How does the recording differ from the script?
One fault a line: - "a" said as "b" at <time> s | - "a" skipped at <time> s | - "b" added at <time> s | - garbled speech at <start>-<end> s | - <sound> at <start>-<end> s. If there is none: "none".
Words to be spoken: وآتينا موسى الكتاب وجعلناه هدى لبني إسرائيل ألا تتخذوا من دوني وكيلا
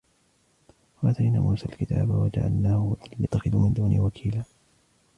- "لبني إسرائيل ألا" skipped at 3.3 s